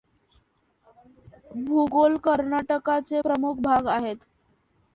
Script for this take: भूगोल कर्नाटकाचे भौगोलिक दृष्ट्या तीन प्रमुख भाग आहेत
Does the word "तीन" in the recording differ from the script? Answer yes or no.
yes